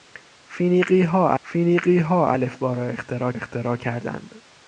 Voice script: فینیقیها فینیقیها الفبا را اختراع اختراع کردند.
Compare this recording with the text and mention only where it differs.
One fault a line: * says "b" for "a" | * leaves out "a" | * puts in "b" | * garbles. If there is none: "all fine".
all fine